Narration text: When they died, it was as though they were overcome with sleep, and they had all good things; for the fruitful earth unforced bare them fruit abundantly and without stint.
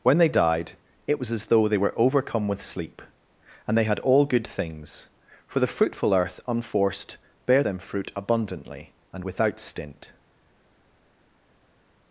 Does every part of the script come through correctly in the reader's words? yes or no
yes